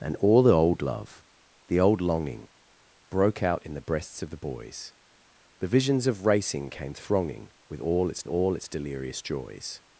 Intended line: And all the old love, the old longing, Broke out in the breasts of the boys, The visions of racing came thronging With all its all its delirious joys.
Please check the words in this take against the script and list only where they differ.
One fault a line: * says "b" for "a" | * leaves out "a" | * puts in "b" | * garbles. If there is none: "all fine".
all fine